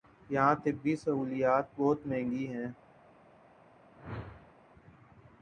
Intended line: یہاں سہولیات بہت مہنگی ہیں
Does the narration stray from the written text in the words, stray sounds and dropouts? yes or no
yes